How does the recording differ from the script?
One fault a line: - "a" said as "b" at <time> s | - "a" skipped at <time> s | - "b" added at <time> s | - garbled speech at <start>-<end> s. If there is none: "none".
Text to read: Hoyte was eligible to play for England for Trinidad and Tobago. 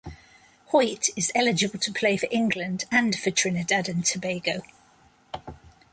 - "was" said as "is" at 1.1 s
- "and" added at 2.9 s